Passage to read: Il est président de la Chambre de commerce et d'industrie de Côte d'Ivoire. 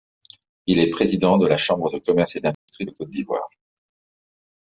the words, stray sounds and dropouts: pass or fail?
fail